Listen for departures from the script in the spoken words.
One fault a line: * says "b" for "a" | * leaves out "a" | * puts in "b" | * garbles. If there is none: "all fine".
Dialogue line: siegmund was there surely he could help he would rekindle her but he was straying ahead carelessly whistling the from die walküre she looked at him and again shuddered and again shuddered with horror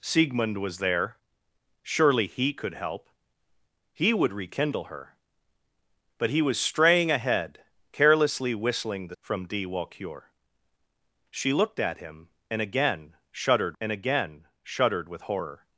all fine